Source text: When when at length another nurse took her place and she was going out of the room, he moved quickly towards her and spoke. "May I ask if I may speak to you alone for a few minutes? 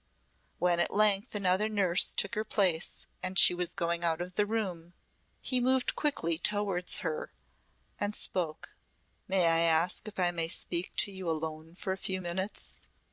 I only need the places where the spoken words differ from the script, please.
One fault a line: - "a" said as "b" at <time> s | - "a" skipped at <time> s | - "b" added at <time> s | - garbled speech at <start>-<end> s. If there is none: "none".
- "when" skipped at 0.8 s